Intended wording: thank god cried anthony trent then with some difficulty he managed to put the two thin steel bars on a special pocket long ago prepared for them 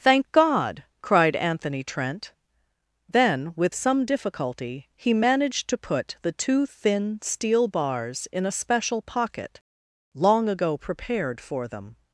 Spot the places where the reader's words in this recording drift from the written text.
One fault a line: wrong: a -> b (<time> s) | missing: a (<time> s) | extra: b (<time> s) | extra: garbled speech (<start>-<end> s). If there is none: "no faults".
wrong: on -> in (8.3 s)